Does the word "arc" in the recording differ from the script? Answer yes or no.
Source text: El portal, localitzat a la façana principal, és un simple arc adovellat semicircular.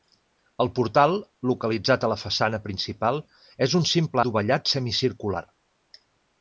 yes